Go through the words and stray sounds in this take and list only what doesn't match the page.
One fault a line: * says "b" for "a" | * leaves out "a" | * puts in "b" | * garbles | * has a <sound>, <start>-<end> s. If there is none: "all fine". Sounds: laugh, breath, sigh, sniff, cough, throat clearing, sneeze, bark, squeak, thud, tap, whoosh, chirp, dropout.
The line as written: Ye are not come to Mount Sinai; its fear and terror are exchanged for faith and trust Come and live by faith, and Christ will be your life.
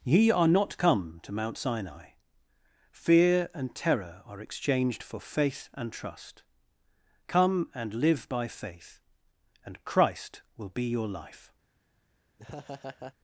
* leaves out "its"
* has a laugh, 12.4-13.1 s